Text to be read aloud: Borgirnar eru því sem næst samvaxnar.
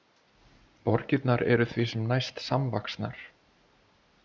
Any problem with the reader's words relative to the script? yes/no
no